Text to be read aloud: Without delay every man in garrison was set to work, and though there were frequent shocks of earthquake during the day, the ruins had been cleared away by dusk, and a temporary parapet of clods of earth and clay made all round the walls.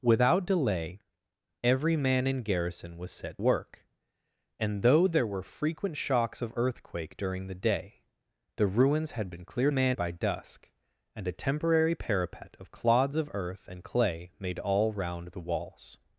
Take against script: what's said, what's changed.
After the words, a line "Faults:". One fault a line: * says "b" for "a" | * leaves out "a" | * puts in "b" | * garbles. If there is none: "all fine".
Without delay every man in garrison was set work, and though there were frequent shocks of earthquake during the day, the ruins had been cleared man by dusk, and a temporary parapet of clods of earth and clay made all round the walls.
Faults:
* leaves out "to"
* says "man" for "away"